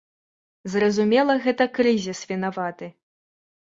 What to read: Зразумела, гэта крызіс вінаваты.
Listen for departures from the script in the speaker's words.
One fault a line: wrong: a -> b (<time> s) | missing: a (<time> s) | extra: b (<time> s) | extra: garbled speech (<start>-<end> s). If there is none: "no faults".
no faults